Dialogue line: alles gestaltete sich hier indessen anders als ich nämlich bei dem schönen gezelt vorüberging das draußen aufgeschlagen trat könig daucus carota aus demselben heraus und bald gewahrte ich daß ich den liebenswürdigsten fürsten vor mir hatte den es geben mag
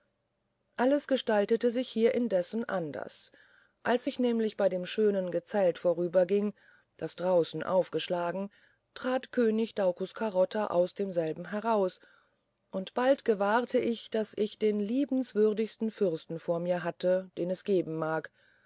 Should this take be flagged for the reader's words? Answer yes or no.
no